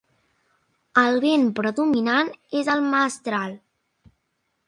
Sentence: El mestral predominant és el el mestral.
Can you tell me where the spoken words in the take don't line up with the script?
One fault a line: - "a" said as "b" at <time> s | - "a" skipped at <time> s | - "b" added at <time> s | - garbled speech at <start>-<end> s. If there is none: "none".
- "mestral" said as "vent" at 1.2 s
- "el" skipped at 2.8 s